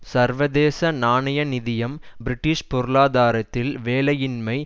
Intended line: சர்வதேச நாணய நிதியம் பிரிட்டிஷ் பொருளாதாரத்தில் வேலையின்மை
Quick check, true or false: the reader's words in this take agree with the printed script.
true